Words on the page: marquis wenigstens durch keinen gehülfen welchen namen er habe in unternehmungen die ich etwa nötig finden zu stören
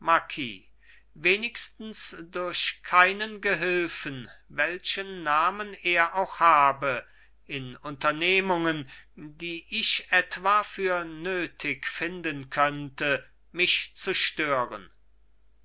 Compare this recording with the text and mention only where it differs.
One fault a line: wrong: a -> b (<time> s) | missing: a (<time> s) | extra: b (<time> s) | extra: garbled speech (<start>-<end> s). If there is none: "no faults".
extra: auch (6.2 s)
extra: für (10.6 s)
extra: könnte mich (12.5 s)